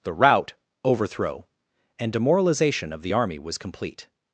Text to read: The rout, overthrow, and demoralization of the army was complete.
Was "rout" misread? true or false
false